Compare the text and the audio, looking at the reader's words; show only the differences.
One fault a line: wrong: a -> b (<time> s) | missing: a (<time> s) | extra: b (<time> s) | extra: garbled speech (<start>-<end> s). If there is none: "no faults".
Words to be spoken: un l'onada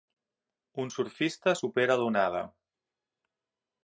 extra: surfista supera (0.9 s)